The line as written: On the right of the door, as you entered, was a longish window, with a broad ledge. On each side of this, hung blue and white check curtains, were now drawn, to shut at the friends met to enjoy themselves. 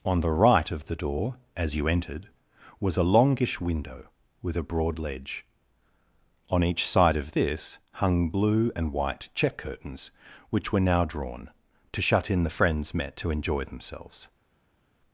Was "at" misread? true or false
true